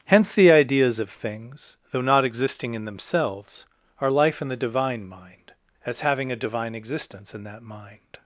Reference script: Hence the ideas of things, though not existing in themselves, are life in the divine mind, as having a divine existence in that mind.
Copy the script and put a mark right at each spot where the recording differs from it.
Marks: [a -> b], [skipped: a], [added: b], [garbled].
Hence the ideas of things, though not existing in themselves, are life in the divine mind, as having a divine existence in that mind.